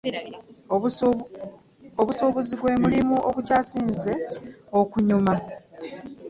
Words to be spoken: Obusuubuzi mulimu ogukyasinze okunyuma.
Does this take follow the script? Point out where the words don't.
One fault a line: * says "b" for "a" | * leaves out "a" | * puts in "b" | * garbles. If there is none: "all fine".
* puts in "gwe"